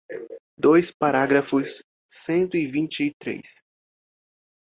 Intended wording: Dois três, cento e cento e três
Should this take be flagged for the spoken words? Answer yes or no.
yes